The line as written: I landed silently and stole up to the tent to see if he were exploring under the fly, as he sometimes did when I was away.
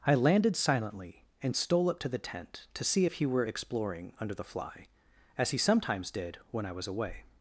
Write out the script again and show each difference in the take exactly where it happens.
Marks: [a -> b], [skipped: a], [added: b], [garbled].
I landed silently and stole up to the tent to see if he were exploring under the fly, as he sometimes did when I was away.